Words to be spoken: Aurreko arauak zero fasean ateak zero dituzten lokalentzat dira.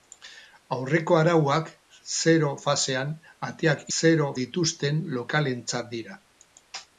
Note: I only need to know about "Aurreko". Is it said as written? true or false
true